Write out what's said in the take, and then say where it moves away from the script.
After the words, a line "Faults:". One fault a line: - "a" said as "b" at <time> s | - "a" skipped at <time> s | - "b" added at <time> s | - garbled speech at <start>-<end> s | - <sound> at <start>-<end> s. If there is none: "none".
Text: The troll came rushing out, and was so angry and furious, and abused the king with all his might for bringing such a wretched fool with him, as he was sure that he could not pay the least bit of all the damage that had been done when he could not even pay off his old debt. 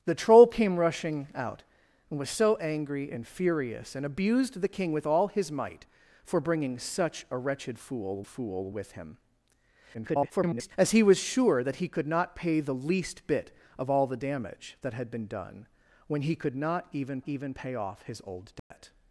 The troll came rushing out, and was so angry and furious, and abused the king with all his might for bringing such a wretched fool fool with him, [garbled] as he was sure that he could not pay the least bit of all the damage that had been done when he could not even even pay off his old debt.
Faults:
- "fool" added at 8.3 s
- garbled speech at 9.9-10.7 s
- "even" added at 17.3 s
- dropout at 18.6-18.7 s